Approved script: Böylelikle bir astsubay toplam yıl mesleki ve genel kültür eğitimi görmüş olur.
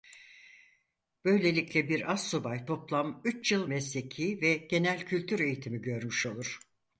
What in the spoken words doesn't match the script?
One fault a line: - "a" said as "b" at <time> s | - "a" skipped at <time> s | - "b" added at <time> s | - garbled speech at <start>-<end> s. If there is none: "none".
- "üç" added at 3.3 s